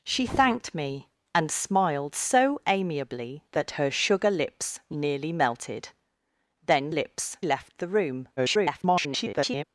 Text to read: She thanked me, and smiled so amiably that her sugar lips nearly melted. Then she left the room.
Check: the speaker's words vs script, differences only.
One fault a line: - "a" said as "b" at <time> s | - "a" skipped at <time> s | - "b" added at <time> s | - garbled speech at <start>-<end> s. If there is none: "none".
- "she" said as "lips" at 6.9 s
- garbled speech at 8.4-9.6 s